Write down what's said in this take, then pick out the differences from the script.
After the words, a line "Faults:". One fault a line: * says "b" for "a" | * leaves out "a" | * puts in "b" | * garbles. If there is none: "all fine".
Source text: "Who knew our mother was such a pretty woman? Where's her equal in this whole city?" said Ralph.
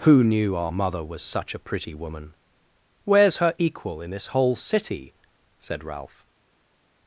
"Who knew our mother was such a pretty woman? Where's her equal in this whole city?" said Ralph.
Faults:
all fine